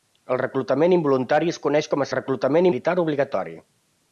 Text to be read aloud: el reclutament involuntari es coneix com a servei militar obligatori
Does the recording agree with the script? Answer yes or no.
no